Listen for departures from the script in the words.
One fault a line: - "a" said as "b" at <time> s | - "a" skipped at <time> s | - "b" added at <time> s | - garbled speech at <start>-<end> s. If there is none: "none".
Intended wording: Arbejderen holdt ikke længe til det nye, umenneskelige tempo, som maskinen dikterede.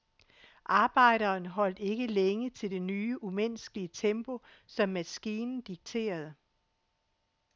none